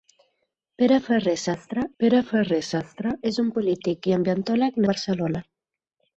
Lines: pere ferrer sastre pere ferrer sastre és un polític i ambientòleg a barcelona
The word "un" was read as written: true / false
true